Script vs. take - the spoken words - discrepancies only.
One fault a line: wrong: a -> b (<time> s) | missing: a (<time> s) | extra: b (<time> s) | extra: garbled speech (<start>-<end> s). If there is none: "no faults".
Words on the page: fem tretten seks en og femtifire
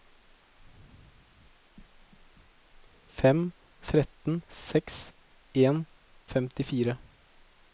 no faults